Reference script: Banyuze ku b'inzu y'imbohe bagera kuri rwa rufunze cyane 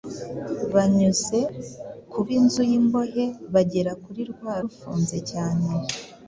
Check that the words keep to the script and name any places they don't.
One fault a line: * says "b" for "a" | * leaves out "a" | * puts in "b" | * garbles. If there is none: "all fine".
all fine